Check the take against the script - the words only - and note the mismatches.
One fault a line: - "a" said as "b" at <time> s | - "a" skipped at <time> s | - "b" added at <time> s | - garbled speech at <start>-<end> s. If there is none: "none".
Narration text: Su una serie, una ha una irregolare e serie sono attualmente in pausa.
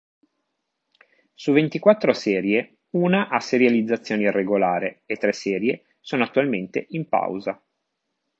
- "una" said as "ventiquattro" at 1.5 s
- "una" said as "serializzazione" at 3.4 s
- "tre" added at 5.2 s